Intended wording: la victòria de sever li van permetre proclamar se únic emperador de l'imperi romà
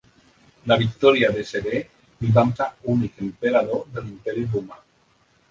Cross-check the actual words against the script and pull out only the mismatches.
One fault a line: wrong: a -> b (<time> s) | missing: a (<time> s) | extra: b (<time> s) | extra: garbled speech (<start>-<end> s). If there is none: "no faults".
missing: permetre proclamar (2.5 s)